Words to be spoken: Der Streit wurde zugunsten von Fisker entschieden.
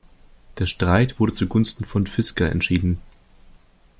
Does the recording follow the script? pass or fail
pass